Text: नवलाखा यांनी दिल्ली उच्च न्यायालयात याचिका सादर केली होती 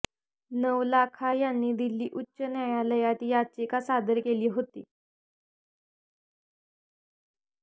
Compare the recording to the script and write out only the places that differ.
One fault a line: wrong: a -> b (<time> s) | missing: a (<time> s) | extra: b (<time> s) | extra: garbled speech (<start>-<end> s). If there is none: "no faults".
no faults